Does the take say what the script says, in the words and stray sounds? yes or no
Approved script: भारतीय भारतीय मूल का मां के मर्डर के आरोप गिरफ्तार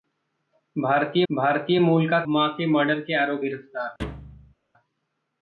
no